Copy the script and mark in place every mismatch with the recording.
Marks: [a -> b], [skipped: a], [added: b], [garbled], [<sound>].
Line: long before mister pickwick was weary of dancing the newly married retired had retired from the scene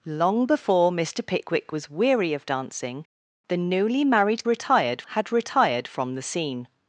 long before mister pickwick was weary of dancing the newly married retired had retired from the scene